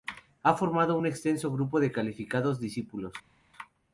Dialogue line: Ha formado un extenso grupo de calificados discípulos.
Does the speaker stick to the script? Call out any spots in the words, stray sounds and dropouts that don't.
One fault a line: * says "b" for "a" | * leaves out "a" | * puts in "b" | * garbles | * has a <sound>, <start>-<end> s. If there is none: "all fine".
all fine